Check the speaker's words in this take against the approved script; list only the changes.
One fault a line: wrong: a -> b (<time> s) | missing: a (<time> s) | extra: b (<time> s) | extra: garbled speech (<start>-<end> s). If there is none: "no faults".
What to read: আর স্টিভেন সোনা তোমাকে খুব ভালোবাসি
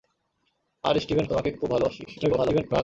missing: সোনা (1.2 s)
extra: garbled speech (2.1-2.8 s)